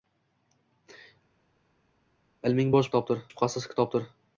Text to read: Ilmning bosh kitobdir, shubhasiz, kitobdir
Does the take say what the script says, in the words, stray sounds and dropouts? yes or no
yes